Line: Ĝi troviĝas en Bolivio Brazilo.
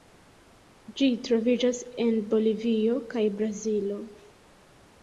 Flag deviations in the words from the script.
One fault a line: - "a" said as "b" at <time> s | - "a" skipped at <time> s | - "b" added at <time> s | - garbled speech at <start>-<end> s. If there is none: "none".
- "kaj" added at 3.1 s